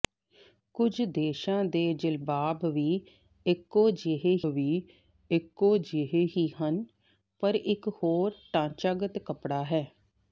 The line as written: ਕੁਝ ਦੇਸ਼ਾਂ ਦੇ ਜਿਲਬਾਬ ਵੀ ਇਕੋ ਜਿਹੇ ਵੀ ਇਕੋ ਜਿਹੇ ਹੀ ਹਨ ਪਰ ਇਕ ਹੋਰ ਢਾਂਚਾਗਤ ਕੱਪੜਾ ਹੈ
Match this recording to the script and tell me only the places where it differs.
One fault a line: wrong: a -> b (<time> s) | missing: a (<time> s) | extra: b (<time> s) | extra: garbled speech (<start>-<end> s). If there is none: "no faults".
no faults